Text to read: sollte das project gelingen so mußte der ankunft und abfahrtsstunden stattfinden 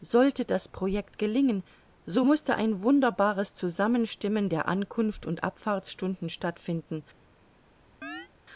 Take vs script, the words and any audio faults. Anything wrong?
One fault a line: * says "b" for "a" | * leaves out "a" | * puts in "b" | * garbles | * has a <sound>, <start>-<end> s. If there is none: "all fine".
* puts in "ein wunderbares zusammenstimmen"
* has a chirp, 8.0-8.3 s